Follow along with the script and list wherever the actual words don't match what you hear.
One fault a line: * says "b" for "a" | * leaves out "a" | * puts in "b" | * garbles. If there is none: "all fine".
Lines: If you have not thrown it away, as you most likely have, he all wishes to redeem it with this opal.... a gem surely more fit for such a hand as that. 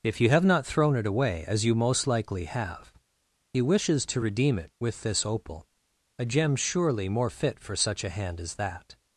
* leaves out "all"